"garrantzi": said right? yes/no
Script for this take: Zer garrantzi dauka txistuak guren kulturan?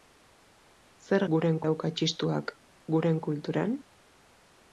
no